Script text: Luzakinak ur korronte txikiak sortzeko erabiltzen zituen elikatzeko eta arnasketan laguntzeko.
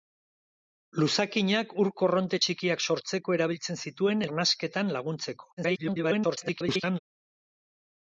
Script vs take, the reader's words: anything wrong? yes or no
yes